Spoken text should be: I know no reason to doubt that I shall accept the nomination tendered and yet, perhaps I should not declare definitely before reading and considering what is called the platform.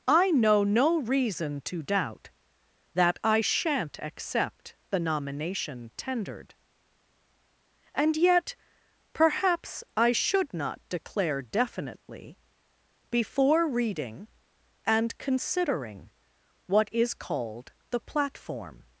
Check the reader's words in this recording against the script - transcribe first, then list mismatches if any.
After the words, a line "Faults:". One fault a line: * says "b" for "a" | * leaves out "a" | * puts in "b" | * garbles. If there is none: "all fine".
I know no reason to doubt that I shan't accept the nomination tendered and yet, perhaps I should not declare definitely before reading and considering what is called the platform.
Faults:
* says "shan't" for "shall"